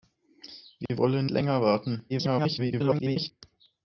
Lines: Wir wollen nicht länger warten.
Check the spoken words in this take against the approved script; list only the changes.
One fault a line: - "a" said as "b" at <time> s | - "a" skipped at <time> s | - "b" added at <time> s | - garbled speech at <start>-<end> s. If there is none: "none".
- "nicht" skipped at 1.3 s
- garbled speech at 2.1-3.3 s